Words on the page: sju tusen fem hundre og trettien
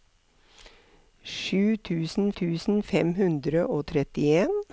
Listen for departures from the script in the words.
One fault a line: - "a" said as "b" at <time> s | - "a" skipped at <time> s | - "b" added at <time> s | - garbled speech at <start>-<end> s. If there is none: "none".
- "tusen" added at 2.4 s